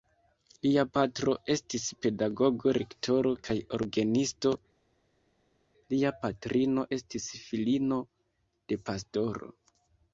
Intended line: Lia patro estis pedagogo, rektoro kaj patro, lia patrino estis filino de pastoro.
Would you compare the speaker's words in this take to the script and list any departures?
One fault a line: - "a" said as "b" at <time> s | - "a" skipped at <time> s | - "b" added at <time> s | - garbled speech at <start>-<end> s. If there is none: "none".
- "patro" said as "orgenisto" at 3.8 s